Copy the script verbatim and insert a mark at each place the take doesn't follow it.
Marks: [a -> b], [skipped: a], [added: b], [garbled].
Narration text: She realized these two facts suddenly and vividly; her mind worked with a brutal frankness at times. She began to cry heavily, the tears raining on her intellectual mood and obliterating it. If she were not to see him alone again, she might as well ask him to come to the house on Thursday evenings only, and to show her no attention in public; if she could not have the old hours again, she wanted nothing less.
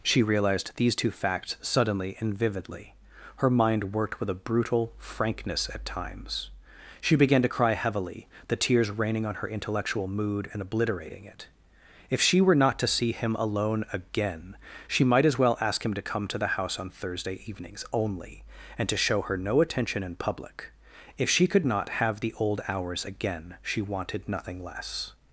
She realized these two facts suddenly and vividly; her mind worked with a brutal frankness at times. She began to cry heavily, the tears raining on her intellectual mood and obliterating it. If she were not to see him alone again, she might as well ask him to come to the house on Thursday evenings only, and to show her no attention in public; if she could not have the old hours again, she wanted nothing less.